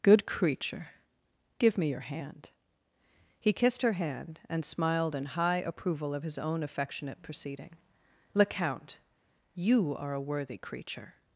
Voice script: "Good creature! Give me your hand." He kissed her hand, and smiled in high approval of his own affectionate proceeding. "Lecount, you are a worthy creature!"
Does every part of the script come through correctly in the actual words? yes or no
yes